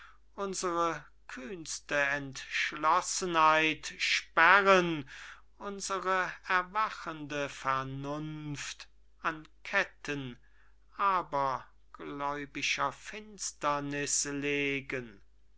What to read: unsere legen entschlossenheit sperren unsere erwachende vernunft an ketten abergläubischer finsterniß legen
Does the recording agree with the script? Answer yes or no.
no